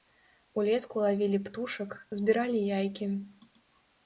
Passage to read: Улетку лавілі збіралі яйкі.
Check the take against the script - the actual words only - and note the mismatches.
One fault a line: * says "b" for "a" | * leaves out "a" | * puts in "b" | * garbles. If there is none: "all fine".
* puts in "птушак"